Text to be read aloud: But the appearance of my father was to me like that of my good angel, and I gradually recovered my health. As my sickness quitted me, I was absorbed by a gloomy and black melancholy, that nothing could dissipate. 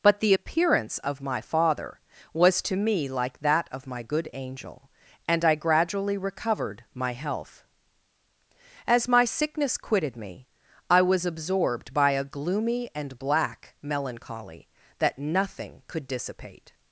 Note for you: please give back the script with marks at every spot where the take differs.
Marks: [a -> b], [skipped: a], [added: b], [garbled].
But the appearance of my father was to me like that of my good angel, and I gradually recovered my health. As my sickness quitted me, I was absorbed by a gloomy and black melancholy, that nothing could dissipate.